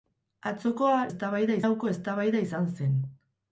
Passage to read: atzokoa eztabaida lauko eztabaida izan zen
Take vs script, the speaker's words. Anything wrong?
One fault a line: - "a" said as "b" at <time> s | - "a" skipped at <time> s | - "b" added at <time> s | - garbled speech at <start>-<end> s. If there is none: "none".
none